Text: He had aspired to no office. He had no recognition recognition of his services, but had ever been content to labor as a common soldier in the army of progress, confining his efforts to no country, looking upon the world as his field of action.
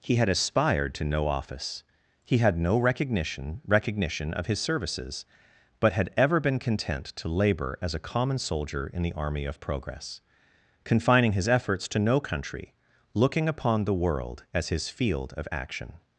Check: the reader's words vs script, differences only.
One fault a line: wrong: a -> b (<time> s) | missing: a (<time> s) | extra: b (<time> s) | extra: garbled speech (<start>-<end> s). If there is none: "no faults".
no faults